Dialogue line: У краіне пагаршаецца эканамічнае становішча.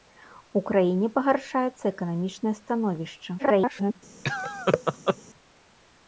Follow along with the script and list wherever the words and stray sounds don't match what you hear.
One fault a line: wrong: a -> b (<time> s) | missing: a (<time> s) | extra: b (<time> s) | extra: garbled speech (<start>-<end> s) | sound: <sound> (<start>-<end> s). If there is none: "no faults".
extra: garbled speech (3.4-4.0 s)
sound: laugh (4.2-5.2 s)